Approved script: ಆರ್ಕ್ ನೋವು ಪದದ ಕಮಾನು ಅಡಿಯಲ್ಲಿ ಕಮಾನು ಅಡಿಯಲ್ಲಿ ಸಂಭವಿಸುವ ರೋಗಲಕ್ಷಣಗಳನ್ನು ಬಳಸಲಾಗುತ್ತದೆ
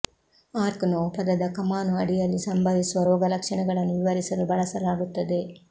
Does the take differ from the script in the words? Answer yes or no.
yes